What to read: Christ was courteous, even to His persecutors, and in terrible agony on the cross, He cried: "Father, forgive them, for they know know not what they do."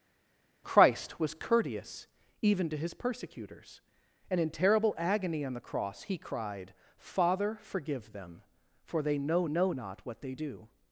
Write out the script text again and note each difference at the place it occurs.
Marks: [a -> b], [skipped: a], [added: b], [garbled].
Christ was courteous, even to His persecutors, and in terrible agony on the cross, He cried: "Father, forgive them, for they know know not what they do."